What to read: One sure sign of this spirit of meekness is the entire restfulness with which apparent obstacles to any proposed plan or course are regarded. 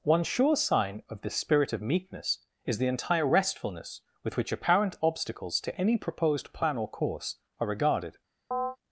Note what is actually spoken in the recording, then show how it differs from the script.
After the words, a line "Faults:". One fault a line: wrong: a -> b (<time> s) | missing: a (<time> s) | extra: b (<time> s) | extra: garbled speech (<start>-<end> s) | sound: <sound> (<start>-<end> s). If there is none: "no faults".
One sure sign of this spirit of meekness is the entire restfulness with which apparent obstacles to any proposed plan or course are regarded.
Faults:
sound: chirp (8.5-8.8 s)